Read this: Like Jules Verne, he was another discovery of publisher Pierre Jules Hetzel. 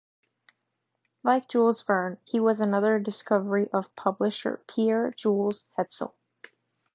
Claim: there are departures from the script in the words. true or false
false